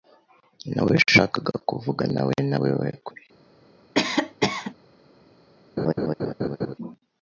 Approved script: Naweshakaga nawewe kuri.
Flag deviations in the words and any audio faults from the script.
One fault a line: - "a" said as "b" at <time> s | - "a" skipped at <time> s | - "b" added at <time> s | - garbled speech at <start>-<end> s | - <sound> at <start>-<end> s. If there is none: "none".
- "kuvuganawe" added at 1.7 s
- cough at 3.9-4.7 s
- laugh at 5.8-6.7 s